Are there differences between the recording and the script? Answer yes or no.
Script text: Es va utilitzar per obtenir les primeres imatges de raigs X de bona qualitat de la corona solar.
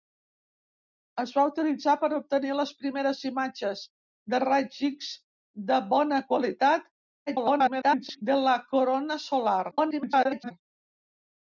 yes